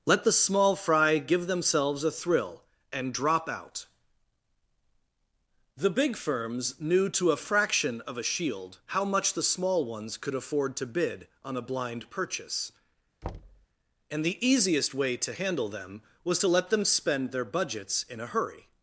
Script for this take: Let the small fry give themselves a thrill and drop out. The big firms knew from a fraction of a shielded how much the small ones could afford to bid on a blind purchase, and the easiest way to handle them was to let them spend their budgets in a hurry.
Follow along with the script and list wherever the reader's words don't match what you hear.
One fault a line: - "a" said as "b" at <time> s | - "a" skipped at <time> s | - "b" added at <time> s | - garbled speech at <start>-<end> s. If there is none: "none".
- "from" said as "to" at 7.1 s
- "shielded" said as "shield" at 8.2 s